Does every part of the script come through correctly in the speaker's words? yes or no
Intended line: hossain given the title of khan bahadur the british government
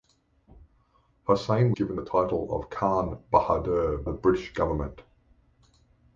yes